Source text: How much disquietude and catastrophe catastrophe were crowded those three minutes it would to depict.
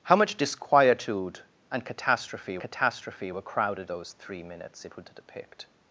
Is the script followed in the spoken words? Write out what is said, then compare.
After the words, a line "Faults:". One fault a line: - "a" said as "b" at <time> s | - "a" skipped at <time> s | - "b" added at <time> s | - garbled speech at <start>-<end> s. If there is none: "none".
How much disquietude and catastrophe catastrophe were crowded those three minutes it would to depict.
Faults:
none